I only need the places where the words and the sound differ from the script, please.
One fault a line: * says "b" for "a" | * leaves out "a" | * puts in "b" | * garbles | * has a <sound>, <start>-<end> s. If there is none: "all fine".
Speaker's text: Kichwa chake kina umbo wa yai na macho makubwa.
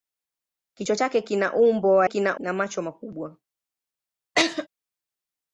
* says "kina" for "yai"
* has a laugh, 4.4-4.7 s